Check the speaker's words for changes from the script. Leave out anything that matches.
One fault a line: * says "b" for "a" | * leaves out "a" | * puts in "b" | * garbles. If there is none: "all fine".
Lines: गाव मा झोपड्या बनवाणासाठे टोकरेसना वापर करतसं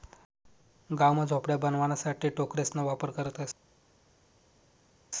all fine